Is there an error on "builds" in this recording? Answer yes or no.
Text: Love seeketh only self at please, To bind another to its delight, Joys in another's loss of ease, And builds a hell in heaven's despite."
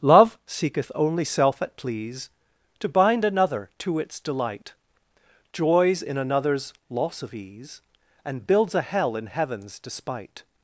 no